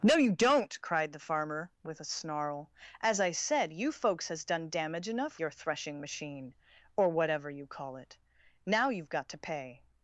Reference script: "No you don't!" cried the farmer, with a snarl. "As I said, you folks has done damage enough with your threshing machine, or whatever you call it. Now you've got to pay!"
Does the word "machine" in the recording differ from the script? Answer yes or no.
no